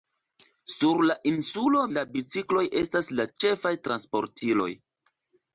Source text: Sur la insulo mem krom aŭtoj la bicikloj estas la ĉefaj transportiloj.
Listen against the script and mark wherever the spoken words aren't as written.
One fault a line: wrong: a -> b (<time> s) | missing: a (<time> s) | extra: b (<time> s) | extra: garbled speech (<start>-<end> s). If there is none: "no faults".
missing: mem krom aŭtoj (1.8 s)